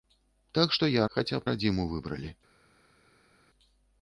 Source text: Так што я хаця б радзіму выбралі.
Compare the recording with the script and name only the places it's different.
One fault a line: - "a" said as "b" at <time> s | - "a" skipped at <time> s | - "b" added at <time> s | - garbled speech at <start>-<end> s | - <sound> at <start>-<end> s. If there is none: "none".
none